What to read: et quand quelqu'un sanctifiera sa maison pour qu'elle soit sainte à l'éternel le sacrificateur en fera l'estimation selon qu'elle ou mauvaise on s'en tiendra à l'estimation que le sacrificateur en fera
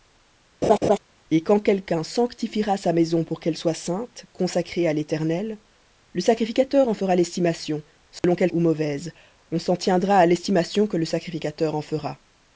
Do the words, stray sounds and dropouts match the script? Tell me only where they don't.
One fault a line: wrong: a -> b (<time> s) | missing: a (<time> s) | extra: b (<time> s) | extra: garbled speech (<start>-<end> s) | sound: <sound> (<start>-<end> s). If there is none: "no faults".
sound: laugh (0.6-1.0 s)
sound: dropout (8.2-8.2 s)